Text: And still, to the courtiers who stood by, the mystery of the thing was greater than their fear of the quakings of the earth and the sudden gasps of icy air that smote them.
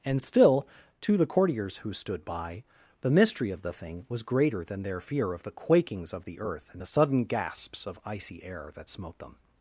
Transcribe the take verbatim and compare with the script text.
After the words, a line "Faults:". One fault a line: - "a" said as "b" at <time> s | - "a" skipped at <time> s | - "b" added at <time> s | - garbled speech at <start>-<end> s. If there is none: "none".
And still, to the courtiers who stood by, the mystery of the thing was greater than their fear of the quakings of the earth and the sudden gasps of icy air that smote them.
Faults:
none